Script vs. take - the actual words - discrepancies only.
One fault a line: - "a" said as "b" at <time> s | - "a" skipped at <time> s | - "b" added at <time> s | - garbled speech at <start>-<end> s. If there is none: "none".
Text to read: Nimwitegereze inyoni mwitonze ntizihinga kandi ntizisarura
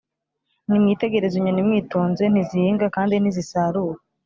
none